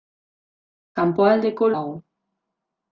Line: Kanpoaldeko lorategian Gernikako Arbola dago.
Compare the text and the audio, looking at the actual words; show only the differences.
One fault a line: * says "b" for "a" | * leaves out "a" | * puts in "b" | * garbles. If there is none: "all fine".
* leaves out "lorategian Gernikako Arbola"